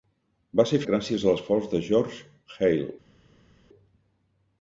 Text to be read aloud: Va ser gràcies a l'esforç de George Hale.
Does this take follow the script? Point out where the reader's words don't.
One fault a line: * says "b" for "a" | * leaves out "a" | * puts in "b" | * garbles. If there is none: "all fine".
all fine